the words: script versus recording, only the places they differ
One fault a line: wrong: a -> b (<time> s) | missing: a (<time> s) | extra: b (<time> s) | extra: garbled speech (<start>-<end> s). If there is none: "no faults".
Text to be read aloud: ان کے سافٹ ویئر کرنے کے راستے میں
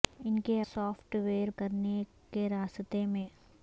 no faults